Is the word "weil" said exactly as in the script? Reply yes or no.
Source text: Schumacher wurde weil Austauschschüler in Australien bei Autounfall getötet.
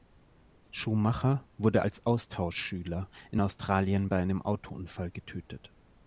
no